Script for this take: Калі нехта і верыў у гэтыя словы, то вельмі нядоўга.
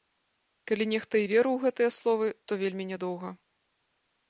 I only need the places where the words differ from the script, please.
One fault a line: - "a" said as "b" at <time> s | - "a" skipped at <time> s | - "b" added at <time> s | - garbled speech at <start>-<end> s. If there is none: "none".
none